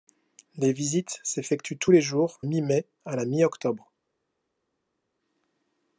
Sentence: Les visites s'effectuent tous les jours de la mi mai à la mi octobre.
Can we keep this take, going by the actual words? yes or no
no